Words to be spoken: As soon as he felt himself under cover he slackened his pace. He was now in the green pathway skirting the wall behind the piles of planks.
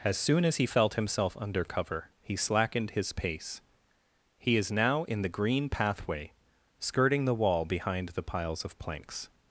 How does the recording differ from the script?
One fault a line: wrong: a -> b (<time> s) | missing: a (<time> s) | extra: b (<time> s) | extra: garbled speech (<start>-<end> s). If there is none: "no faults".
wrong: was -> is (4.6 s)